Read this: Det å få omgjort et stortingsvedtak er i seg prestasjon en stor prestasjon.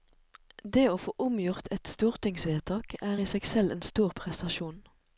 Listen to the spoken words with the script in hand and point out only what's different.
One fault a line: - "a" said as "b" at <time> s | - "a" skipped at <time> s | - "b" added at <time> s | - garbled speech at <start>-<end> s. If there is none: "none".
- "prestasjon" said as "selv" at 3.5 s